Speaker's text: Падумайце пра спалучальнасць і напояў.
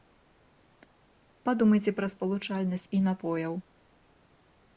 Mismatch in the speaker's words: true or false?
false